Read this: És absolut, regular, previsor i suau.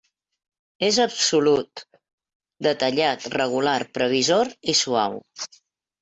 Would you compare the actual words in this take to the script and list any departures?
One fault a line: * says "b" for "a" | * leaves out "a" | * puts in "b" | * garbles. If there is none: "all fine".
* puts in "detallat"